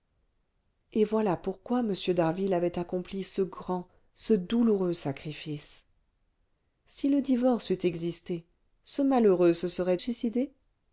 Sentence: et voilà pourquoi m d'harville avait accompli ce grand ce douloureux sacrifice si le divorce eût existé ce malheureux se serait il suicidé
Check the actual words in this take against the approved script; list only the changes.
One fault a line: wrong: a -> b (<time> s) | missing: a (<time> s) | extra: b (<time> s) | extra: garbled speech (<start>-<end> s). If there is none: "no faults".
missing: il (10.0 s)